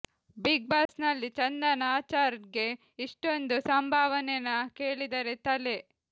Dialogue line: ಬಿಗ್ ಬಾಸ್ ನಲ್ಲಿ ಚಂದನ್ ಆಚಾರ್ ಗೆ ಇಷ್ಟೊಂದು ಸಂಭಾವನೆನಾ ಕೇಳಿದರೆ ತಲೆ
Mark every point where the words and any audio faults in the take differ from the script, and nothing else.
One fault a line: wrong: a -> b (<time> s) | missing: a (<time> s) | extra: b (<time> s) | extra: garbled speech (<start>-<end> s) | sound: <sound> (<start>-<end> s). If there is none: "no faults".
sound: dropout (0.9-0.9 s)